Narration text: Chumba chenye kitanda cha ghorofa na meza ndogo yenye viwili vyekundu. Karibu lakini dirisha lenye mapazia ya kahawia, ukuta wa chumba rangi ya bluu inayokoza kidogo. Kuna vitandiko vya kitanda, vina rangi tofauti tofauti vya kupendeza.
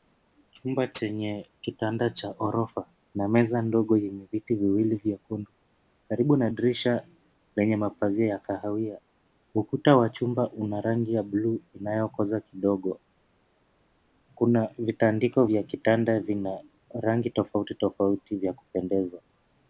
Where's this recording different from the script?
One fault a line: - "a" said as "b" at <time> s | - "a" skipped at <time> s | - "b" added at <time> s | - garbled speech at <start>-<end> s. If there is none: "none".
- "viti" added at 4.3 s
- "lakini" said as "na" at 6.4 s
- "una" added at 10.5 s